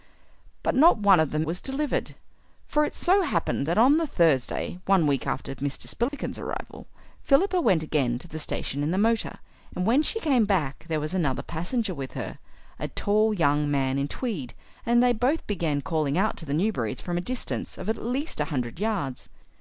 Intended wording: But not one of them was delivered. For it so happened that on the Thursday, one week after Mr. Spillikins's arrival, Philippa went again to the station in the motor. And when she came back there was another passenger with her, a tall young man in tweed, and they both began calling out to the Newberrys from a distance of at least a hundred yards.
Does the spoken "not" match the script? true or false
true